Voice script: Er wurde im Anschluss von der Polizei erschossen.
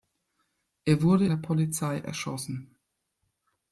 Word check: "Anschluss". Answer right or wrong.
wrong